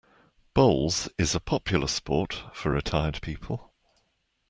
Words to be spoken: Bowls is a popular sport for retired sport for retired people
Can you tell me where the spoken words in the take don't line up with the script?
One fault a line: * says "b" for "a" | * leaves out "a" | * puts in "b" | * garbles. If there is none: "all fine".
* leaves out "sport for retired"